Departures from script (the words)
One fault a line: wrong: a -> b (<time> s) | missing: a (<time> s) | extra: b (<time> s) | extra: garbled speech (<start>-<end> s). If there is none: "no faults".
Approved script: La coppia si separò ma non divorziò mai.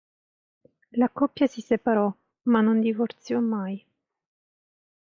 no faults